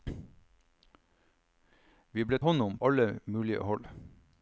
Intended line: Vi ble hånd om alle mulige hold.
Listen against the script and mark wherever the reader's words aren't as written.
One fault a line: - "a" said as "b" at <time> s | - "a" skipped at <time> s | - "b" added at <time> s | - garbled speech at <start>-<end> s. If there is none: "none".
none